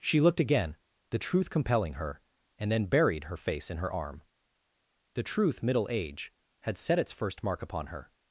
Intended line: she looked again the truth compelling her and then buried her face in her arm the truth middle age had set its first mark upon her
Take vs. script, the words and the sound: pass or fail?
pass